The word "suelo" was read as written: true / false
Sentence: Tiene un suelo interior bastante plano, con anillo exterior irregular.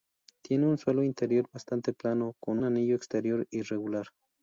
true